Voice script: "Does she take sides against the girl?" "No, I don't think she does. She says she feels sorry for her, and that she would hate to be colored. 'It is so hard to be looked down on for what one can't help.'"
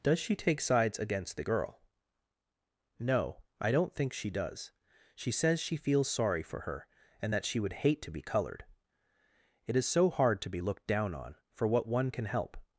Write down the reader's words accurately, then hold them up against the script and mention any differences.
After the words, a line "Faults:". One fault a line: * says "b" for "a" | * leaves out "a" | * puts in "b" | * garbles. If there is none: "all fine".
"Does she take sides against the girl?" "No, I don't think she does. She says she feels sorry for her, and that she would hate to be colored. 'It is so hard to be looked down on for what one can help.'"
Faults:
* says "can" for "can't"